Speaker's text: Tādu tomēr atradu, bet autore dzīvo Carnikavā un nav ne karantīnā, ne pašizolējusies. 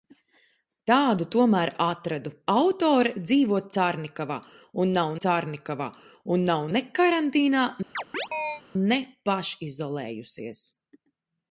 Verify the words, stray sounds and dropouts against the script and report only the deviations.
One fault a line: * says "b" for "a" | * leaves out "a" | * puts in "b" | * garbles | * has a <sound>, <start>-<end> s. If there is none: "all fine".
* leaves out "bet"
* puts in "Carnikavā un nav"
* has a chirp, 7.9-8.6 s